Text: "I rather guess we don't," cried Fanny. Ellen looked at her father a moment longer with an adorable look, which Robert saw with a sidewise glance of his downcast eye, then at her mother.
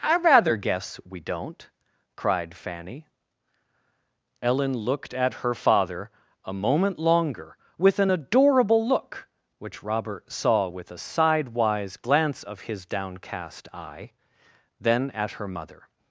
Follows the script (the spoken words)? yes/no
yes